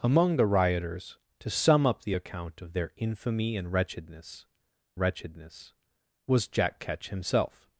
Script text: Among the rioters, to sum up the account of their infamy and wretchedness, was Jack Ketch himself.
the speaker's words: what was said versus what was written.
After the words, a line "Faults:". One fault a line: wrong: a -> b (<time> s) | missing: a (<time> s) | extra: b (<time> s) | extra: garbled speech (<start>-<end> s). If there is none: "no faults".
Among the rioters, to sum up the account of their infamy and wretchedness wretchedness, was Jack Ketch himself.
Faults:
extra: wretchedness (5.0 s)